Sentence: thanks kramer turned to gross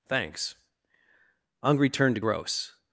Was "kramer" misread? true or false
true